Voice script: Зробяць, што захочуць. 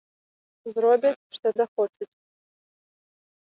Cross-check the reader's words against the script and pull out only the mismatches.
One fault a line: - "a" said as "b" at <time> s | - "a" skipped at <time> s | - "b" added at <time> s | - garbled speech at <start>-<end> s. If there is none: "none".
none